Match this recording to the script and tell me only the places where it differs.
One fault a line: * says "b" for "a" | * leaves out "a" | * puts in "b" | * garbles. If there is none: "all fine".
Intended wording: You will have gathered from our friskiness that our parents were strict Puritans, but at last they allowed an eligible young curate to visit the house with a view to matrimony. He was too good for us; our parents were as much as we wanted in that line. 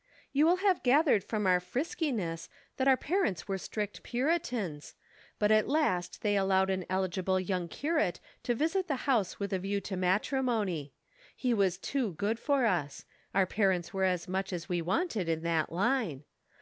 all fine